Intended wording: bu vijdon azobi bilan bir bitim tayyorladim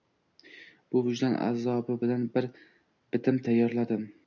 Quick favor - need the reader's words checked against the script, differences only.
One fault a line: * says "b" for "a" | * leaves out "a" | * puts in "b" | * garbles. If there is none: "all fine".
all fine